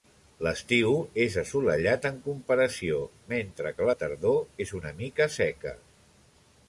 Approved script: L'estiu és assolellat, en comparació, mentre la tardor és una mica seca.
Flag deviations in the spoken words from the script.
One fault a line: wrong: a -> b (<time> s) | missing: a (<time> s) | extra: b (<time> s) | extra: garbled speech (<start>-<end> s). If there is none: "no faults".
extra: que (3.8 s)